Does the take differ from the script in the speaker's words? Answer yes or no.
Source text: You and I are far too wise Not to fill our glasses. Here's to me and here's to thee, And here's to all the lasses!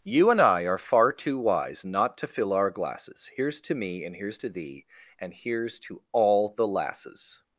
no